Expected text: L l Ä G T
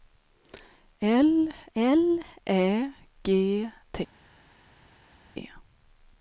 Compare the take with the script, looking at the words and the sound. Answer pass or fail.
pass